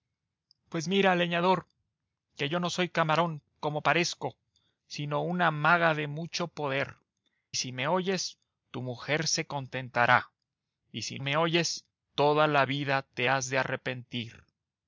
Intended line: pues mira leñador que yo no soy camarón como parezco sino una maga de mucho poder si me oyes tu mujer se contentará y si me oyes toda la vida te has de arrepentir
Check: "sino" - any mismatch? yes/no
no